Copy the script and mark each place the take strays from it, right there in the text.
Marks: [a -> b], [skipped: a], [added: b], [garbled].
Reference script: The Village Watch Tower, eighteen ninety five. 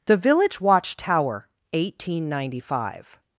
The Village Watch Tower, eighteen ninety five.